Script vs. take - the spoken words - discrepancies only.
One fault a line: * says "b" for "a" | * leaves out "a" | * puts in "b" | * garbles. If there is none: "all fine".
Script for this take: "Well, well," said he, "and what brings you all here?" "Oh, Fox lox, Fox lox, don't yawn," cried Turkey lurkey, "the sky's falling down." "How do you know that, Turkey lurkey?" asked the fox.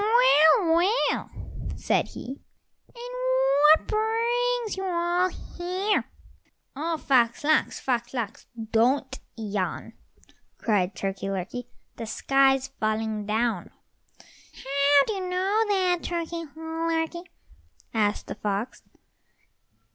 all fine